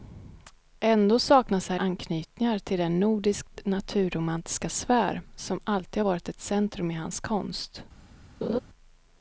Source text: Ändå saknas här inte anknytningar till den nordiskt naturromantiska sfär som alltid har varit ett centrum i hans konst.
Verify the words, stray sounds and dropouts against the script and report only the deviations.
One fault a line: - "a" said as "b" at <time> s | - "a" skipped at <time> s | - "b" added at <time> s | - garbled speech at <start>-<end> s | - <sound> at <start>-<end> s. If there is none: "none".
- "inte" skipped at 1.8 s
- laugh at 8.4-8.6 s